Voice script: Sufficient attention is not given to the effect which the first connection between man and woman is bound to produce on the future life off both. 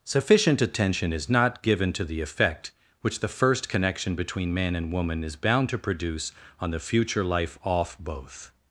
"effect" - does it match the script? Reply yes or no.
yes